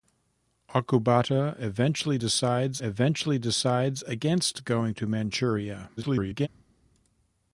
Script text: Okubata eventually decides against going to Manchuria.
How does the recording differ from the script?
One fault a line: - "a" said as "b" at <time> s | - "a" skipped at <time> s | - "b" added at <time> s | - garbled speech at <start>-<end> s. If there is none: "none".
- "eventually decides" added at 2.8 s
- garbled speech at 6.0-6.5 s